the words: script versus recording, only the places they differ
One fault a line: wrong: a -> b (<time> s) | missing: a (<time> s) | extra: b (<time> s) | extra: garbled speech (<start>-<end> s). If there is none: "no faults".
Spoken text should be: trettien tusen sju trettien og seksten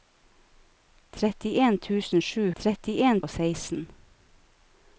no faults